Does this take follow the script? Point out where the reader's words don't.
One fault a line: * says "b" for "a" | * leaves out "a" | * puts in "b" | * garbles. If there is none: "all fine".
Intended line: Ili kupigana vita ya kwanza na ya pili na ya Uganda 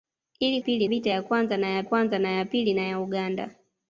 * says "pili" for "kupigana"
* puts in "kwanza na ya"